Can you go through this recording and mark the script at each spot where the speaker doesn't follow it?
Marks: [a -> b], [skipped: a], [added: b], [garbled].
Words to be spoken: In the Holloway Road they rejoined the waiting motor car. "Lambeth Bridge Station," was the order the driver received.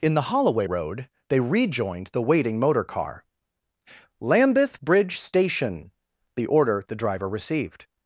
In the Holloway Road they rejoined the waiting motor car. "Lambeth Bridge Station," [skipped: was] the order the driver received.